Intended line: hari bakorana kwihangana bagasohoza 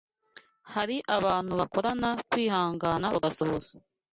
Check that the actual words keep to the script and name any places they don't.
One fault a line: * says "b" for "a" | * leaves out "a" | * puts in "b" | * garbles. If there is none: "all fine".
* puts in "abantu"